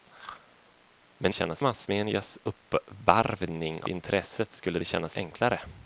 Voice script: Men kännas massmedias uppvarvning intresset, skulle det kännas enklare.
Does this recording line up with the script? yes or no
yes